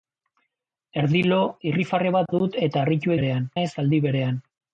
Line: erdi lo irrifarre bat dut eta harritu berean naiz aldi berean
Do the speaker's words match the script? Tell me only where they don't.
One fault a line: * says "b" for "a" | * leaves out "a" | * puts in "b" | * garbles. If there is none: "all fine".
all fine